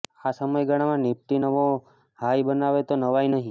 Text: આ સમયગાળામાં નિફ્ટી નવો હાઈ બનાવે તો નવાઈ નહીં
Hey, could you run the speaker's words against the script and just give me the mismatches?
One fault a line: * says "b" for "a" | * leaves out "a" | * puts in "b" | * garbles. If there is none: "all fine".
all fine